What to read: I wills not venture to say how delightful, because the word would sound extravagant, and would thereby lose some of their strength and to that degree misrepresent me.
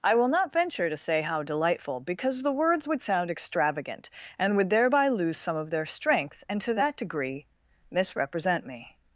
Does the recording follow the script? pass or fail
fail